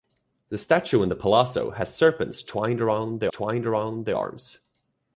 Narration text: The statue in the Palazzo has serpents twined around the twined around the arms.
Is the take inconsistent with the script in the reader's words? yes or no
no